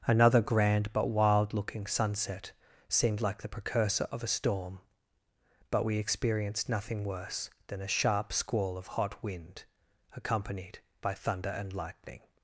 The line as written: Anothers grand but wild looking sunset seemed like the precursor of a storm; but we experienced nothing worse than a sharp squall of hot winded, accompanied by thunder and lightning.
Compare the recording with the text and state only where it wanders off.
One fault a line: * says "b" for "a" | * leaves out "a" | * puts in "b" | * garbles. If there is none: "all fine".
* says "Another" for "Anothers"
* says "wind" for "winded"